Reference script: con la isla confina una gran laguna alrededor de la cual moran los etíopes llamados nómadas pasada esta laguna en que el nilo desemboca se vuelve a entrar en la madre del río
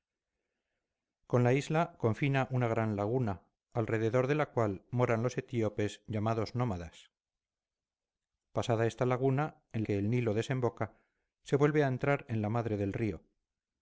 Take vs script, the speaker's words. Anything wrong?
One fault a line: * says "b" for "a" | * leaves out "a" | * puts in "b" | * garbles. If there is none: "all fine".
all fine